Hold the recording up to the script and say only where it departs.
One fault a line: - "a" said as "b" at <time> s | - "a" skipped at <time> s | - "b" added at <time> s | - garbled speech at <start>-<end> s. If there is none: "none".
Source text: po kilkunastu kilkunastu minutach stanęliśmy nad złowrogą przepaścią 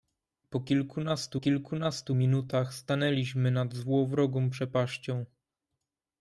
none